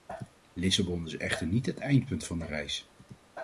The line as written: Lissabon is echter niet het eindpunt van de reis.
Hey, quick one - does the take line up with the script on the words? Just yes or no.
yes